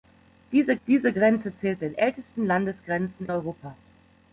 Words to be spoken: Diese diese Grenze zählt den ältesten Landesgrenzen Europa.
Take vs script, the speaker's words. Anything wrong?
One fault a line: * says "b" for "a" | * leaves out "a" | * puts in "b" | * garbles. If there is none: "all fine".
all fine